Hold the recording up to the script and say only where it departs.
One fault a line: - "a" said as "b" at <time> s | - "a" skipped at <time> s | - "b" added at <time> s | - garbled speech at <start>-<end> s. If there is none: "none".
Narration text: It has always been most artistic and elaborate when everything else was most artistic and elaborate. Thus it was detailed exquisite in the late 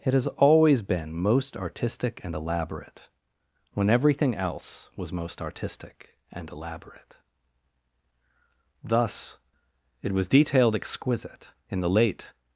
none